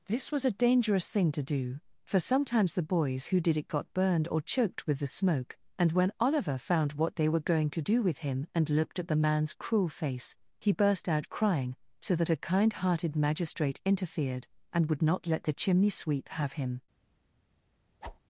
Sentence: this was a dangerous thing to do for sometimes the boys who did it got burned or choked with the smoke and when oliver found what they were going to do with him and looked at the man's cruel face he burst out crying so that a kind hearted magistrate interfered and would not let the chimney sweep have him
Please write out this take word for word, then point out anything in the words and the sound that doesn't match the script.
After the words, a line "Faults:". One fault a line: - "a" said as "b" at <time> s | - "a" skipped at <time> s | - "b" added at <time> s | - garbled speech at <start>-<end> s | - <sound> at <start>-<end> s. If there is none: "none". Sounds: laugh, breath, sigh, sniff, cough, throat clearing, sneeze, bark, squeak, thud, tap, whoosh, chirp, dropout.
this was a dangerous thing to do for sometimes the boys who did it got burned or choked with the smoke and when oliver found what they were going to do with him and looked at the man's cruel face he burst out crying so that a kind hearted magistrate interfered and would not let the chimney sweep have him
Faults:
- whoosh at 18.0-18.2 s